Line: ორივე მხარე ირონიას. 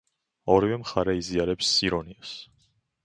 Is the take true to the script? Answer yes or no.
no